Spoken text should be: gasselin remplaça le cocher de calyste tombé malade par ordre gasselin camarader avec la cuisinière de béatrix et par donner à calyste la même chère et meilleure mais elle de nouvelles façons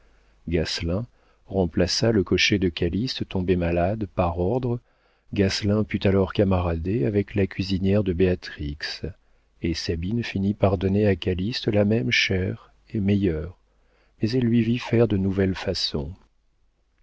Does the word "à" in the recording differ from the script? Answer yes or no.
no